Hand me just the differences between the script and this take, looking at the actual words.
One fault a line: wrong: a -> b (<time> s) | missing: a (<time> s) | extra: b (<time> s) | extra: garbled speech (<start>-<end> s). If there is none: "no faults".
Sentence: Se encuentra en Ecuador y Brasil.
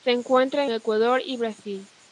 missing: en (0.7 s)